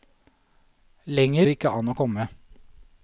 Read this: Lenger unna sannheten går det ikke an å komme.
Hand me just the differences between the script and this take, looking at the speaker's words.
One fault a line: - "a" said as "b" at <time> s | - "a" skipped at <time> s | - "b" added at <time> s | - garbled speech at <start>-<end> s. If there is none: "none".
- "unna sannheten går" skipped at 1.5 s